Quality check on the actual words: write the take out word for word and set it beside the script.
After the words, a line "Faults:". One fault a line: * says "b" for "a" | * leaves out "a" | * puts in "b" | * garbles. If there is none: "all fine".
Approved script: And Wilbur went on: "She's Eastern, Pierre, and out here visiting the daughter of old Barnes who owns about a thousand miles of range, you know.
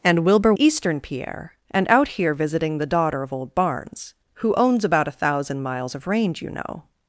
And Wilbur Eastern, Pierre, and out here visiting the daughter of old Barnes who owns about a thousand miles of range, you know.
Faults:
* leaves out "went on She's"